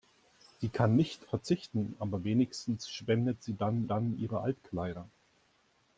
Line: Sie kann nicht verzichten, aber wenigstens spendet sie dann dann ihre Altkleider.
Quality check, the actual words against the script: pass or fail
pass